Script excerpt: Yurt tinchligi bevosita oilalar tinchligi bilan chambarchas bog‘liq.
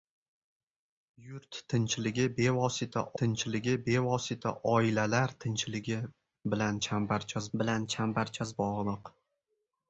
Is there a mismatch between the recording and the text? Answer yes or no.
yes